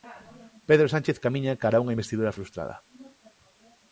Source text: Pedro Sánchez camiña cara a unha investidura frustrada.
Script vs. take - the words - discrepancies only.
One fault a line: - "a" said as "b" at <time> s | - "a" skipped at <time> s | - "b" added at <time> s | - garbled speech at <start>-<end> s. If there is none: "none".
none